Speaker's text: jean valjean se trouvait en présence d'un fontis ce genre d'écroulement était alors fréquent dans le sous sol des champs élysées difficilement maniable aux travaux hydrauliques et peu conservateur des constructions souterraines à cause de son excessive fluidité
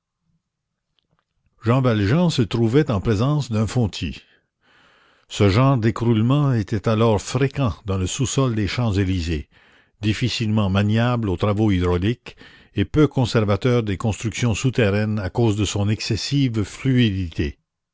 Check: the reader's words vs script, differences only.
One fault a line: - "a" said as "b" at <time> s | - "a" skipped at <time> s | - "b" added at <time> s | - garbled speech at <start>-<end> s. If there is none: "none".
none